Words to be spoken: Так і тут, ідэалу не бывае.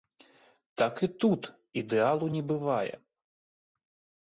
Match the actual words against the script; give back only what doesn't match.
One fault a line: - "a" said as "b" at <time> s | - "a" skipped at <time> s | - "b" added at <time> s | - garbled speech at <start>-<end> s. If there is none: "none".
none